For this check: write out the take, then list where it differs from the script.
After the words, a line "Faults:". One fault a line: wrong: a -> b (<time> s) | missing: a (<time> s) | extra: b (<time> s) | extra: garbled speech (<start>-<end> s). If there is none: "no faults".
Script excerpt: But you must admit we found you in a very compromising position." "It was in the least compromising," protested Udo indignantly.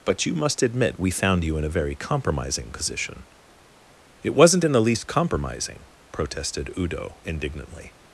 But you must admit we found you in a very compromising position." "It wasn't in the least compromising," protested Udo indignantly.
Faults:
wrong: was -> wasn't (4.3 s)